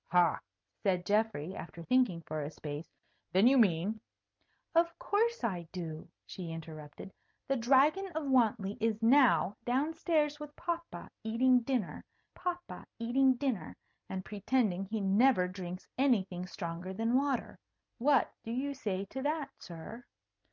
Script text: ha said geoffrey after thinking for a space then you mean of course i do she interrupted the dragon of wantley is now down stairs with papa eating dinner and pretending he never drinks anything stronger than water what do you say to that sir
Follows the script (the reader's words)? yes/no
no